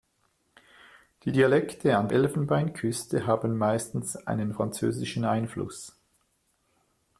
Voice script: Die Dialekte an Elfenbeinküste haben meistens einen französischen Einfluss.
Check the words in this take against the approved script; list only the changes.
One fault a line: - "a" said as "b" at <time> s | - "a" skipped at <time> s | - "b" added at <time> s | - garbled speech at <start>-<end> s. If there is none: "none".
none